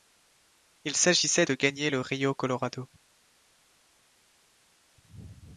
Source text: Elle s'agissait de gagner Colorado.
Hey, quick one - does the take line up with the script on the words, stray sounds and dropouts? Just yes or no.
no